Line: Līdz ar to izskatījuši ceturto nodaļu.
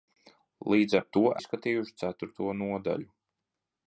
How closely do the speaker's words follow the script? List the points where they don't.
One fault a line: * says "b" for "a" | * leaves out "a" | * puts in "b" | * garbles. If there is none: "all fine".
all fine